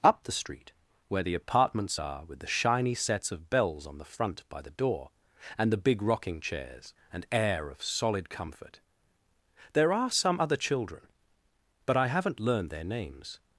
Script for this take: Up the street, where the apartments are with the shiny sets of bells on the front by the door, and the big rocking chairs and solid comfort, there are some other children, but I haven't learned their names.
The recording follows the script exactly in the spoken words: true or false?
false